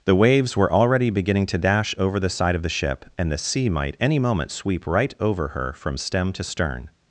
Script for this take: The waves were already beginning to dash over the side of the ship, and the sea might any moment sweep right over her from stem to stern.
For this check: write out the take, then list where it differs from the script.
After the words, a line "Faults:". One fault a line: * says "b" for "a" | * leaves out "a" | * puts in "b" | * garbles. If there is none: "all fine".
The waves were already beginning to dash over the side of the ship, and the sea might any moment sweep right over her from stem to stern.
Faults:
all fine